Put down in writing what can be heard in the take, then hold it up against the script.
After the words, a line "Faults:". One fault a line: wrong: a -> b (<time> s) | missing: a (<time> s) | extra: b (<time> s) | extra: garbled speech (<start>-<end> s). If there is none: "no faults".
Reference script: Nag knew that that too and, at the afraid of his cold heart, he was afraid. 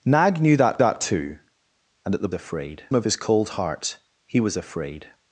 Nag knew that that too and, at the afraid of his cold heart, he was afraid.
Faults:
no faults